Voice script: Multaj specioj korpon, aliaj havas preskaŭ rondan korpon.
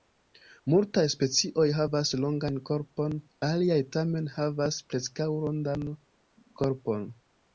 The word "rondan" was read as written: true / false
true